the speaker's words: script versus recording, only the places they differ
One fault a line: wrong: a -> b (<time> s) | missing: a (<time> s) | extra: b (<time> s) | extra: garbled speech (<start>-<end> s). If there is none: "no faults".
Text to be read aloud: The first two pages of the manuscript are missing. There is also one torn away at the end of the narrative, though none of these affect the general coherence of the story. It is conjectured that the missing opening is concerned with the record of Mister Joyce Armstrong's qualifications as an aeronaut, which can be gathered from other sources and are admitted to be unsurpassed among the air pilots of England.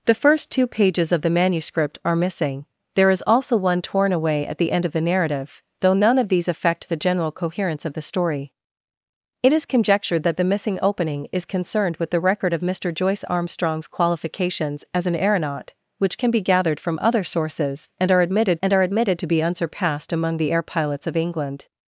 extra: and are admitted (18.6 s)